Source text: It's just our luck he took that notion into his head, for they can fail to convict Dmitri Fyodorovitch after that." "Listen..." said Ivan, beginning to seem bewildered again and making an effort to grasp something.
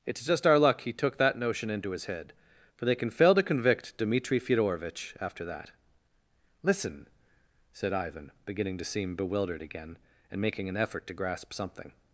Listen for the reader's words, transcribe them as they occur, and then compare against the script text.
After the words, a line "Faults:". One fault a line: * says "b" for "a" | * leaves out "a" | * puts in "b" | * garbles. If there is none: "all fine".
It's just our luck he took that notion into his head, for they can fail to convict Dmitri Fyodorovitch after that." "Listen..." said Ivan, beginning to seem bewildered again and making an effort to grasp something.
Faults:
all fine